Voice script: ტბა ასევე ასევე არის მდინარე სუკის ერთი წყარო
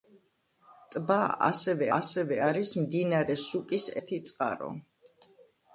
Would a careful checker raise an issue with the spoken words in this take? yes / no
no